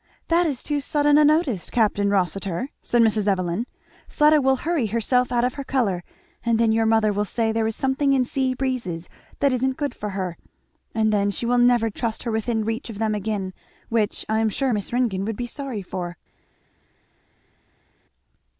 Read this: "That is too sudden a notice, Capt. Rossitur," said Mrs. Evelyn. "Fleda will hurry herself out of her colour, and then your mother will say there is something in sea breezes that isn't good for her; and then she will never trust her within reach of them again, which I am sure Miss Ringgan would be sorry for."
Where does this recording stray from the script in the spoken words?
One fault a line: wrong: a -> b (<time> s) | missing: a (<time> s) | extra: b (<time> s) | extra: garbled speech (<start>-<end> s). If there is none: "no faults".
no faults